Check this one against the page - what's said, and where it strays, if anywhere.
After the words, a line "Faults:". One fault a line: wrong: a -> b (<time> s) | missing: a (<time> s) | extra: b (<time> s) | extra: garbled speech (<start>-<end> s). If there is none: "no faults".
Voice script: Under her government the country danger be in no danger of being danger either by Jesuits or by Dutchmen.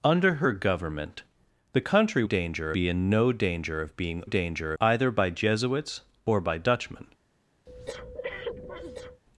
Under her government the country danger be in no danger of being danger either by Jesuits or by Dutchmen.
Faults:
no faults